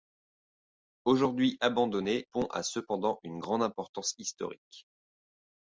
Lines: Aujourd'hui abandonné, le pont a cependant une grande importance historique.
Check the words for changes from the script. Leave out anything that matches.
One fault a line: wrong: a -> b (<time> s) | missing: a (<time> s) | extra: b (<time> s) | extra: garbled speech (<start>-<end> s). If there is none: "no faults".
missing: le (2.2 s)